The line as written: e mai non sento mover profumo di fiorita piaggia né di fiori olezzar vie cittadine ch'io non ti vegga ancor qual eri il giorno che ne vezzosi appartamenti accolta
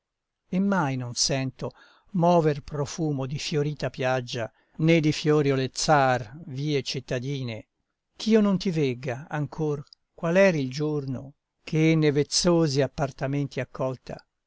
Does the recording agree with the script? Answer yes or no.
yes